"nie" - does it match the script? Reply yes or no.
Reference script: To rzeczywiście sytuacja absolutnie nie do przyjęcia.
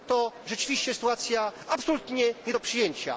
yes